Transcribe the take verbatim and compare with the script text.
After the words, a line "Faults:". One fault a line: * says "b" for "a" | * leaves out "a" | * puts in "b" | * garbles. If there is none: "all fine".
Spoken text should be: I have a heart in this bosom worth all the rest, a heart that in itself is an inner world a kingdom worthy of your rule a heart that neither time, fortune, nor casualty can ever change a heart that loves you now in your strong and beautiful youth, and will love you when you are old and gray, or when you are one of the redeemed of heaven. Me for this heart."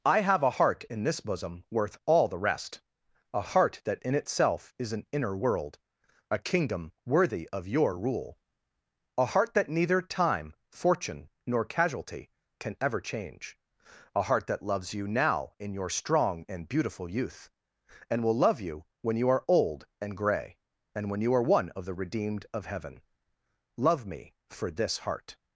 I have a heart in this bosom worth all the rest, a heart that in itself is an inner world a kingdom worthy of your rule a heart that neither time, fortune, nor casualty can ever change a heart that loves you now in your strong and beautiful youth, and will love you when you are old and gray, and when you are one of the redeemed of heaven. Love me for this heart."
Faults:
* says "and" for "or"
* puts in "Love"